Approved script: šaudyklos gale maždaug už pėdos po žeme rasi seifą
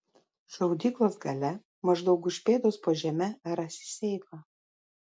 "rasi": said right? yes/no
yes